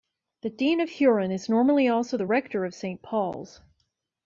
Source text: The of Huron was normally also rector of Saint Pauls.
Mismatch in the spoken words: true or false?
true